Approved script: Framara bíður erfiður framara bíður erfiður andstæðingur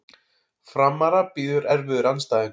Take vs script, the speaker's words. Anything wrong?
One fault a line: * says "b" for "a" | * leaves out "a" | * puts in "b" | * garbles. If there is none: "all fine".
* leaves out "framara bíður erfiður"